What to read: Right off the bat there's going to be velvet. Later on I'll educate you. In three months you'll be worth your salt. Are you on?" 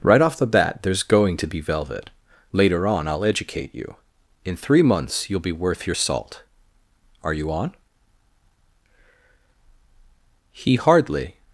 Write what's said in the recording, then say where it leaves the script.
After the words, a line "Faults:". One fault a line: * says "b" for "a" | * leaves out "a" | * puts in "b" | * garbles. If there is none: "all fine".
Right off the bat there's going to be velvet. Later on I'll educate you. In three months you'll be worth your salt. Are you on?" He hardly
Faults:
* puts in "He hardly"